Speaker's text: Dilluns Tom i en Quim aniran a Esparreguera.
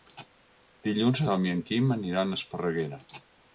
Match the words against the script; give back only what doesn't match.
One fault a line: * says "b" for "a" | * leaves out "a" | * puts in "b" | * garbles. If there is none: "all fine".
all fine